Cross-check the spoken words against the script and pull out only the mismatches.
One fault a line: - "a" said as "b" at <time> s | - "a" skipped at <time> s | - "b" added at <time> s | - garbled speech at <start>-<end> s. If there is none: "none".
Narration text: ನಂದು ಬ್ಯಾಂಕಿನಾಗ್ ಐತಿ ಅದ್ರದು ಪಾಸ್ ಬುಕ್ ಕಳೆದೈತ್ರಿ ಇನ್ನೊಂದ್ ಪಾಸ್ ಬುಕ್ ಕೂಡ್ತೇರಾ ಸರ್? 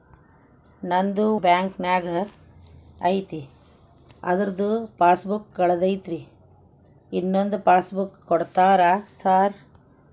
none